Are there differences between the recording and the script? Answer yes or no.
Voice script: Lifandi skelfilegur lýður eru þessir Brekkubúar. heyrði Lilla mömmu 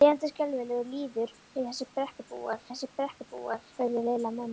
yes